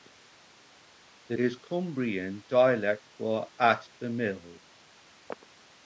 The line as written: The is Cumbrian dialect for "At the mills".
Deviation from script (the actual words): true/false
false